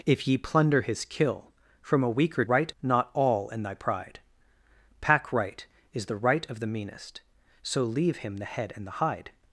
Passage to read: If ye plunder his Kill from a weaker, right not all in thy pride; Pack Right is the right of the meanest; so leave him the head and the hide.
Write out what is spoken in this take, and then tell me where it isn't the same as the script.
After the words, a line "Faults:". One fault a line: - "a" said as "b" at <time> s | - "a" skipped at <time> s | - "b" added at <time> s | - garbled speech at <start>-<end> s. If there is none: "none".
If ye plunder his Kill from a weaker, right not all in thy pride; Pack Right is the right of the meanest; so leave him the head and the hide.
Faults:
none